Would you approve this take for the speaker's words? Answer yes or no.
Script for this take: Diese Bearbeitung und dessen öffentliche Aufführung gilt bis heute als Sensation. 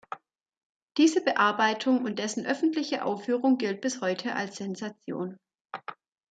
yes